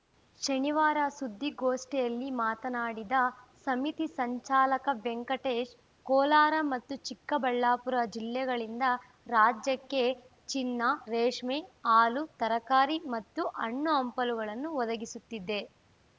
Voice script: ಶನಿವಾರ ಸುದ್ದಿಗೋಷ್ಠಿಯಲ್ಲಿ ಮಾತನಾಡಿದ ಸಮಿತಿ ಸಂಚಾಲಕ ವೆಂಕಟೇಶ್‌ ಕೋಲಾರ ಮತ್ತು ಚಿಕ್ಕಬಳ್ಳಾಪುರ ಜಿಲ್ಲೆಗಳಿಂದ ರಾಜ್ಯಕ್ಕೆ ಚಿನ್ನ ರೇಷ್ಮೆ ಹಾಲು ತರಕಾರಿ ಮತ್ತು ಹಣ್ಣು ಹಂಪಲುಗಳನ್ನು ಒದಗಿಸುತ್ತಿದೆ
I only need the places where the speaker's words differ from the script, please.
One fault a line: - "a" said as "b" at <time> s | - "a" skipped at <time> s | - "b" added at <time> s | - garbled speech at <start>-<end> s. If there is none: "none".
none